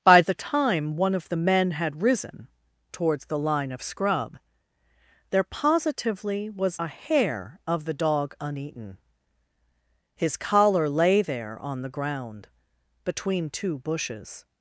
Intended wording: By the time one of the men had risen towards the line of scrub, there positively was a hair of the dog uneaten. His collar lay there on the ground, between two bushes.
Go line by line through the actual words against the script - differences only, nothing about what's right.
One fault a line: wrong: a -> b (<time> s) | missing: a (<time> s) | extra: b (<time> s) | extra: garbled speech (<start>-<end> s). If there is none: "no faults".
no faults